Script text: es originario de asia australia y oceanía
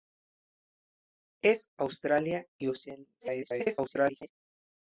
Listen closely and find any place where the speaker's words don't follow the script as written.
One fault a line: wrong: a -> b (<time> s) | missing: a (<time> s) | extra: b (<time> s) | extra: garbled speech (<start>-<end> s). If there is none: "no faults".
missing: originario de asia (1.7 s)
extra: garbled speech (3.2-4.3 s)